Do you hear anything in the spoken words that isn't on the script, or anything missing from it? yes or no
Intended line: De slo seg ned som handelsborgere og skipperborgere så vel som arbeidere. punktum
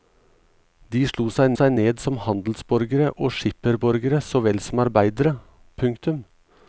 yes